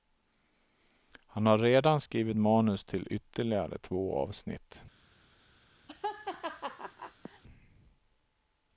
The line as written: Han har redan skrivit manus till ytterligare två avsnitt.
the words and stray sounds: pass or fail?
fail